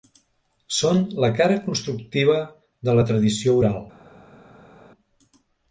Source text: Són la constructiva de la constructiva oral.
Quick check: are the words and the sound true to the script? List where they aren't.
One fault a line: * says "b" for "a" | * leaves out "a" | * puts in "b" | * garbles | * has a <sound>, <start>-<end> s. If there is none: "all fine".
* puts in "cara"
* says "tradició" for "constructiva"